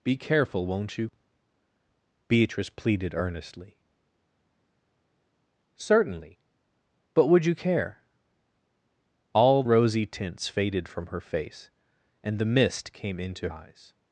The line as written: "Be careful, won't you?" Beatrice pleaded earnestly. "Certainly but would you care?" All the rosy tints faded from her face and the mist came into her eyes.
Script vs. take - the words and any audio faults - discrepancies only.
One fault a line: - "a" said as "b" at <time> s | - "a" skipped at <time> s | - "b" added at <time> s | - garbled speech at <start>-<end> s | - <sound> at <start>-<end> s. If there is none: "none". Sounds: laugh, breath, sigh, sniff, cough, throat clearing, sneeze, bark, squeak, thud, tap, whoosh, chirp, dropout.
- "the" skipped at 9.6 s
- "her" skipped at 13.5 s